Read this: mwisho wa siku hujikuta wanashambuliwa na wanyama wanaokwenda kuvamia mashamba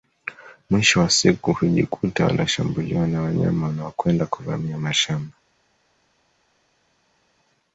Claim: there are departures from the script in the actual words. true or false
false